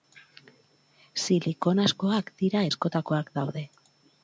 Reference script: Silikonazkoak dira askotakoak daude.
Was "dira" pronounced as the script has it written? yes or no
yes